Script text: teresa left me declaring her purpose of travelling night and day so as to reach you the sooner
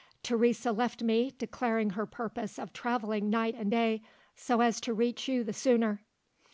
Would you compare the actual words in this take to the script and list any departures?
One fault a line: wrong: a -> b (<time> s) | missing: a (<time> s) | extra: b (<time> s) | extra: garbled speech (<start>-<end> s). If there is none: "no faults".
no faults